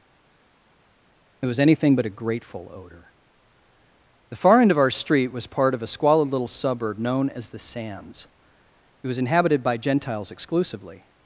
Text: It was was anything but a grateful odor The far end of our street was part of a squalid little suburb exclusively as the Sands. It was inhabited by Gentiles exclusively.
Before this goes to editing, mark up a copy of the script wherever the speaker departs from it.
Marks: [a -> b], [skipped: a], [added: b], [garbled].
It was [skipped: was] anything but a grateful odor The far end of our street was part of a squalid little suburb [exclusively -> known] as the Sands. It was inhabited by Gentiles exclusively.